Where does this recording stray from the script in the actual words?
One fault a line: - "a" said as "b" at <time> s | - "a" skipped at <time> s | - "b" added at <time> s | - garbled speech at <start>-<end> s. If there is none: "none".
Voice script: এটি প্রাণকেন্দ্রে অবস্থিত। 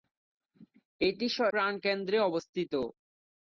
none